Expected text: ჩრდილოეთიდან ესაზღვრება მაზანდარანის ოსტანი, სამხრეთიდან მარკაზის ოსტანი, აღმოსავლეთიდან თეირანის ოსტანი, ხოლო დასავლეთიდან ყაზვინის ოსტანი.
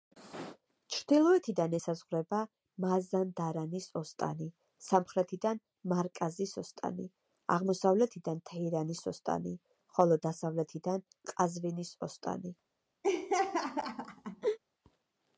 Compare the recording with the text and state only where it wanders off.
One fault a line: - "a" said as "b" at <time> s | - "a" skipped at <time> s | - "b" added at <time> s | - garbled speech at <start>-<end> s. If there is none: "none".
none